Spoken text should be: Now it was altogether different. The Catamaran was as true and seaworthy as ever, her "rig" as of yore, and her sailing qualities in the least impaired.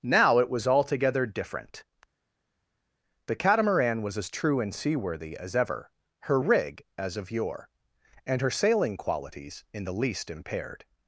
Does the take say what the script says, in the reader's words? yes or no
yes